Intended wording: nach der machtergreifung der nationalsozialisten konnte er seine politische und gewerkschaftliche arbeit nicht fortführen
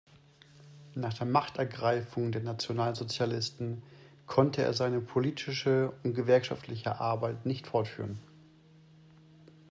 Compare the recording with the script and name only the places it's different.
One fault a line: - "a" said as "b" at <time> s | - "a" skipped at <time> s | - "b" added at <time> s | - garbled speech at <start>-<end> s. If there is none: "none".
none